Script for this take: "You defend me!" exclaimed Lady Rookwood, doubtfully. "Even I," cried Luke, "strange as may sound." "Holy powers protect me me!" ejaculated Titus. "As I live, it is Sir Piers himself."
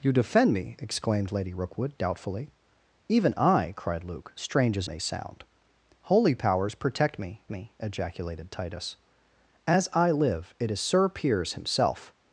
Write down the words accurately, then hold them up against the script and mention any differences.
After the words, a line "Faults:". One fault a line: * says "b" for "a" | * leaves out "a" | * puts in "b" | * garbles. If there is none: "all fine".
"You defend me!" exclaimed Lady Rookwood, doubtfully. "Even I," cried Luke, "strange as may sound." "Holy powers protect me me!" ejaculated Titus. "As I live, it is Sir Piers himself."
Faults:
all fine